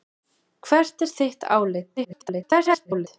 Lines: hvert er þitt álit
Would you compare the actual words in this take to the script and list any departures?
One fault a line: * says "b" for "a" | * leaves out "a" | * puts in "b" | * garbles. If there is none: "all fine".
* garbles